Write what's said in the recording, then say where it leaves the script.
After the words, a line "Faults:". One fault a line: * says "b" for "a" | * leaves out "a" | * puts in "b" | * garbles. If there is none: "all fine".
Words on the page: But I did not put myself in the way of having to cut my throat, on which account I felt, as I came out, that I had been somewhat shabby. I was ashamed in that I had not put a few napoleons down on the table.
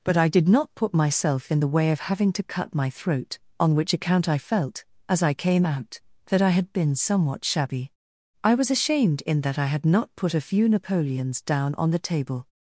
But I did not put myself in the way of having to cut my throat, on which account I felt, as I came out, that I had been somewhat shabby. I was ashamed in that I had not put a few napoleons down on the table.
Faults:
all fine